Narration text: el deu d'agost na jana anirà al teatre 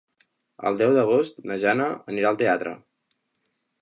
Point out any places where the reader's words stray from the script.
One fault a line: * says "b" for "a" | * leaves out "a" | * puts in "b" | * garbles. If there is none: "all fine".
all fine